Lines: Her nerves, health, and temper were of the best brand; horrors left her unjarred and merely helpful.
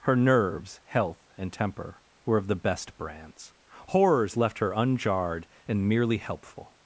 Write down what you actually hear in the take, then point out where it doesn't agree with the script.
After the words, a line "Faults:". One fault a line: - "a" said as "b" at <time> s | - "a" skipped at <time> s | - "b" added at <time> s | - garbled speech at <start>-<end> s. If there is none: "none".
Her nerves, health, and temper were of the best brands; horrors left her unjarred and merely helpful.
Faults:
- "brand" said as "brands" at 3.0 s